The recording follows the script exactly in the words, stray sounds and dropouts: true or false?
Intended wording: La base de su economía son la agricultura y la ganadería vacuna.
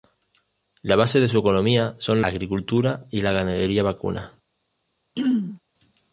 false